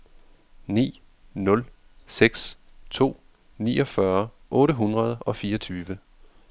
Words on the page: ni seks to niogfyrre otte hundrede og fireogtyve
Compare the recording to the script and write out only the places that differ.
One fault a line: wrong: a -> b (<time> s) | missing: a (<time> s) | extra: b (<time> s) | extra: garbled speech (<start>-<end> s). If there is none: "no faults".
extra: nul (1.3 s)